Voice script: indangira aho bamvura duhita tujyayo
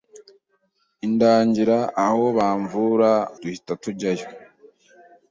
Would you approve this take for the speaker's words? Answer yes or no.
yes